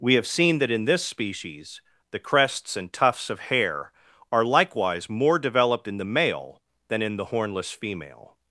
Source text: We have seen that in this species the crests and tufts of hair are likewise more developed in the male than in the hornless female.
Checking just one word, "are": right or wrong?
right